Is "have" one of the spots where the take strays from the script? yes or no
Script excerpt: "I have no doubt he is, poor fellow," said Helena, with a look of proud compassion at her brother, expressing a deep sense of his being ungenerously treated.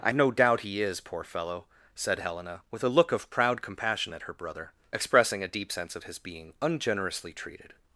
yes